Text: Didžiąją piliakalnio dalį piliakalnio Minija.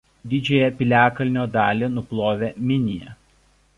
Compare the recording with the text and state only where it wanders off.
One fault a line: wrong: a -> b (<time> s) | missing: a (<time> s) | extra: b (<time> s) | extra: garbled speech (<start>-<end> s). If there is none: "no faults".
wrong: piliakalnio -> nuplovė (2.0 s)